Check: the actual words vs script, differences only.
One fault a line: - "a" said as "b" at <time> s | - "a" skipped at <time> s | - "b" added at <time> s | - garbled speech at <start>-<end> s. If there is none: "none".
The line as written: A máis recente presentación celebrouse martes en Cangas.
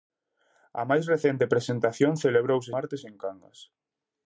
none